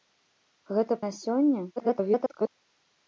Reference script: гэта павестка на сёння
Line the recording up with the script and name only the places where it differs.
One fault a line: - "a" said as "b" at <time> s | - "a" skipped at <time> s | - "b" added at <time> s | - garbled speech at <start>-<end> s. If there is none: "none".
- "павестка" skipped at 1.0 s
- garbled speech at 1.8-2.5 s